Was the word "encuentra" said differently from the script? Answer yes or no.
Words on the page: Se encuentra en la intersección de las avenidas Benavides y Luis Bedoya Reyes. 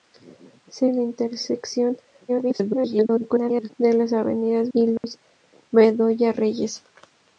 yes